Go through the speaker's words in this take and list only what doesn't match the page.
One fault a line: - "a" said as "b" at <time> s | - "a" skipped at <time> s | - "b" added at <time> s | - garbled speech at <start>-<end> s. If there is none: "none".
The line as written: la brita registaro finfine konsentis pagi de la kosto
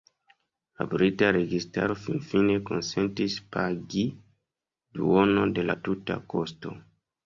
- "duonon" added at 5.0 s
- "tuta" added at 5.9 s